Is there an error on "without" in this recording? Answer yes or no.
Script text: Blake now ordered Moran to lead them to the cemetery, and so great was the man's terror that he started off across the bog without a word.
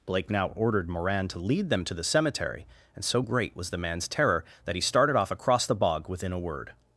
yes